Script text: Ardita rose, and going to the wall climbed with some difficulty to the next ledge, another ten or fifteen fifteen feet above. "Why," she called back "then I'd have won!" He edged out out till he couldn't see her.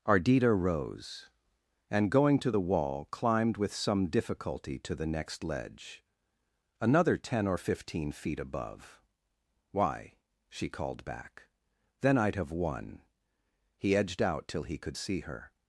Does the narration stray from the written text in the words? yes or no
yes